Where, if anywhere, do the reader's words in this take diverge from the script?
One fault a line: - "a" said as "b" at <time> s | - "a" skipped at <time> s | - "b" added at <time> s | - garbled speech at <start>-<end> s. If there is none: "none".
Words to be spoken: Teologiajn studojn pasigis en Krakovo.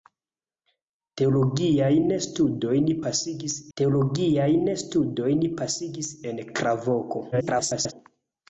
- "teologiajn studojn pasigis" added at 3.8 s
- garbled speech at 7.3-7.9 s